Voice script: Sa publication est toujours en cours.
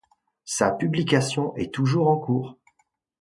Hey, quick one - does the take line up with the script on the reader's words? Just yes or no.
yes